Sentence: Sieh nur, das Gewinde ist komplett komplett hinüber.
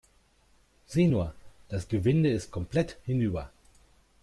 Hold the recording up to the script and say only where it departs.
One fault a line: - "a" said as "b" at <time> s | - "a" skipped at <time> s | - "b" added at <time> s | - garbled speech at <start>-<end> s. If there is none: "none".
- "komplett" skipped at 3.0 s